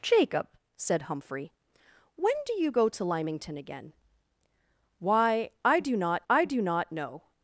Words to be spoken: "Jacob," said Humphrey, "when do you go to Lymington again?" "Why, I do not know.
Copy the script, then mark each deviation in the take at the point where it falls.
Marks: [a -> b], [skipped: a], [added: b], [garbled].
"Jacob," said Humphrey, "when do you go to Lymington again?" "Why, I do not [added: I do not] know.